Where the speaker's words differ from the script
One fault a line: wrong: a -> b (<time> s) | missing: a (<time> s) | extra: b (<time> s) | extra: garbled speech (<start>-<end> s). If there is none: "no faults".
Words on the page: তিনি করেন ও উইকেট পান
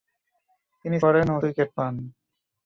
no faults